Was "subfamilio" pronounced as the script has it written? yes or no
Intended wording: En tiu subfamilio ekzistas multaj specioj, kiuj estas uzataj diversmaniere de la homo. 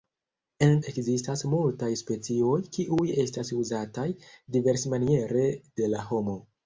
no